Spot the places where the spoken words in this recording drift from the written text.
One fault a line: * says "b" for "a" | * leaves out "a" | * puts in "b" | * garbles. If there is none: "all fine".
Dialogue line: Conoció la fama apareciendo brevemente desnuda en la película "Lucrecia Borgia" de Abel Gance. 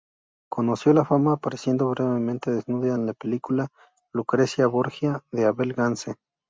all fine